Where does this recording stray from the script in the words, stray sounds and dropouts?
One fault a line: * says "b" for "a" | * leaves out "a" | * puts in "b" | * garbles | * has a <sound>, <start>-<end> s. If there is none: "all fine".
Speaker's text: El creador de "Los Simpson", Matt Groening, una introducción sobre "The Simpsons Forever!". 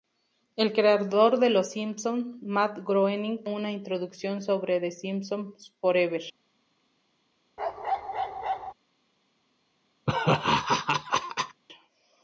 * has a bark, 7.6-8.7 s
* has a laugh, 10.1-11.6 s